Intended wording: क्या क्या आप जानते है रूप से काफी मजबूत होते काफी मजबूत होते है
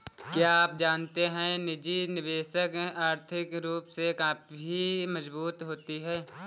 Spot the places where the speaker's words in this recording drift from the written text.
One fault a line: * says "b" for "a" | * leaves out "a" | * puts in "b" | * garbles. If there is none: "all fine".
* leaves out "क्या"
* says "निजी निवेशक आर्थिक रूप से" for "रूप से काफी मजबूत होते"